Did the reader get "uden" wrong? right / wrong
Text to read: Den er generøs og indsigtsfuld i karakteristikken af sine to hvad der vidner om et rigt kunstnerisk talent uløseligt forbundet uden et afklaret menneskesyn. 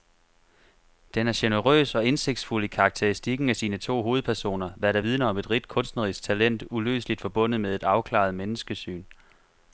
wrong